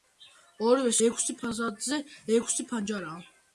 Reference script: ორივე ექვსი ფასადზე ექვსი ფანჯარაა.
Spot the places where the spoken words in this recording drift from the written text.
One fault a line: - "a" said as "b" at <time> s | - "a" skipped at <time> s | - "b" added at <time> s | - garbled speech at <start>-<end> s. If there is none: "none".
none